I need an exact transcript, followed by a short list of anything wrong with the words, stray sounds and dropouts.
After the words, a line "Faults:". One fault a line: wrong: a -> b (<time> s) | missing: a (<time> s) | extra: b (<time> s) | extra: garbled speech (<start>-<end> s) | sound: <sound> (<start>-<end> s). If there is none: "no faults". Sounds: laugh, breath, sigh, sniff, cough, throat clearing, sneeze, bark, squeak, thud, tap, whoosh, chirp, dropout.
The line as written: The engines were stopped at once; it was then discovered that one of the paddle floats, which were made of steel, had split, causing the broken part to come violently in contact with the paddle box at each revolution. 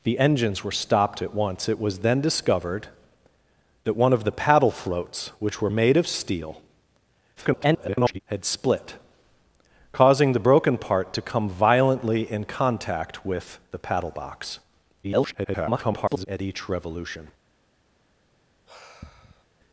The engines were stopped at once; it was then discovered that one of the paddle floats, which were made of steel, [garbled] had split, causing the broken part to come violently in contact with the paddle box [garbled] at each revolution.
Faults:
extra: garbled speech (7.4-8.2 s)
extra: garbled speech (15.0-16.3 s)
sound: sigh (18.7-19.4 s)